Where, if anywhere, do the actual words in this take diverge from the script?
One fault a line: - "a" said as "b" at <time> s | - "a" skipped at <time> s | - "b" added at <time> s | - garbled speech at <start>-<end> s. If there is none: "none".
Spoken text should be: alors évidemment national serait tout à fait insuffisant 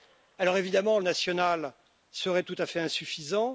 none